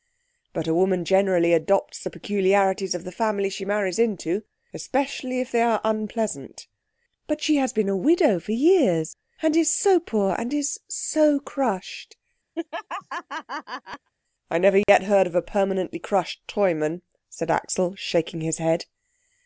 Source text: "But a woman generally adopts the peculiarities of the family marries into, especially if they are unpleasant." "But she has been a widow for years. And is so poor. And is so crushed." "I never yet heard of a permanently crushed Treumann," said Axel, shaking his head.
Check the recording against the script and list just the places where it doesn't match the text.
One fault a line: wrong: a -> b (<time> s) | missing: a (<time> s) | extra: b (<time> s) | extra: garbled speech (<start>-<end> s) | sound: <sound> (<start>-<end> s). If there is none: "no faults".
extra: she (3.5 s)
sound: laugh (12.5-14.1 s)
sound: dropout (14.8-14.9 s)